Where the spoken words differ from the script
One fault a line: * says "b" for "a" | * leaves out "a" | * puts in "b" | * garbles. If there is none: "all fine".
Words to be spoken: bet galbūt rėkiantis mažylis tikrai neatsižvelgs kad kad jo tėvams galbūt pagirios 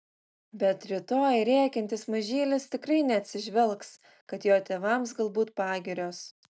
* says "rytoj" for "galbūt"
* leaves out "kad"